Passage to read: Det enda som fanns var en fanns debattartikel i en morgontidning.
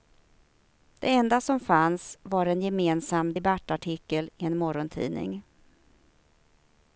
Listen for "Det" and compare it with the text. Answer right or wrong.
right